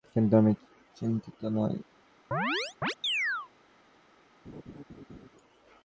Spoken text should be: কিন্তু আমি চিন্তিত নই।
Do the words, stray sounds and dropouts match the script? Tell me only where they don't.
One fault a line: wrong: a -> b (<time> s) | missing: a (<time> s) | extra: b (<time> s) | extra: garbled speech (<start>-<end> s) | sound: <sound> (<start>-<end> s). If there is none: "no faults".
sound: chirp (2.3-3.5 s)
sound: laugh (4.4-5.3 s)